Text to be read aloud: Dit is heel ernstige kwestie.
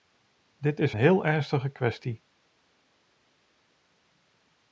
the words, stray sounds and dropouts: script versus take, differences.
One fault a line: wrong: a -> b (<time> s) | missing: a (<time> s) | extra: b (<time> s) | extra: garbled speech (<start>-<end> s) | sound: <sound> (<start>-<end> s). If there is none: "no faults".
no faults